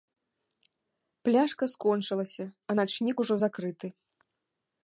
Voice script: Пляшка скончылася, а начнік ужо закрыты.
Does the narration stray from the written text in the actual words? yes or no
no